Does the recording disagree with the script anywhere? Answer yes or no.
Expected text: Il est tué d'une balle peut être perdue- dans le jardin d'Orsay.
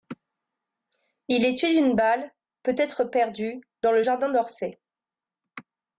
no